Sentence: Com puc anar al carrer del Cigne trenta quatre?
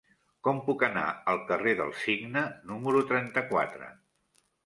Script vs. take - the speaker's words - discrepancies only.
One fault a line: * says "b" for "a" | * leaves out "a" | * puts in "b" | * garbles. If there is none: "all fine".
* puts in "número"